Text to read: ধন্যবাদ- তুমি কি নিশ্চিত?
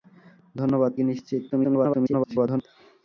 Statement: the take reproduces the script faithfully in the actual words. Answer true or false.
false